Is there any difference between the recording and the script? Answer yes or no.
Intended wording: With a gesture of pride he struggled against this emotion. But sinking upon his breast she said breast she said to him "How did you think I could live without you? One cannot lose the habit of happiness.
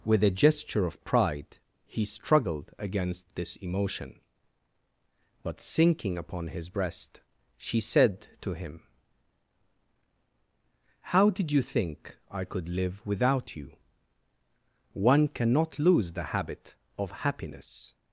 yes